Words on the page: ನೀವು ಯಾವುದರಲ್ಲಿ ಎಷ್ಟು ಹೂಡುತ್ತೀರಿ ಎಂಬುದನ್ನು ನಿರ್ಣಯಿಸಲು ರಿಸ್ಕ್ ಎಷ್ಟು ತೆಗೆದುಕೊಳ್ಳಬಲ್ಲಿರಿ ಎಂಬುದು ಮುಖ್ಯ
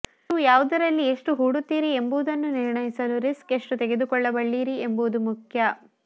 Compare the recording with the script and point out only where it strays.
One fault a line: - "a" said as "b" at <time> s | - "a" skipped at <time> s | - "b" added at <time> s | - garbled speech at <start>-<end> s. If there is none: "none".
none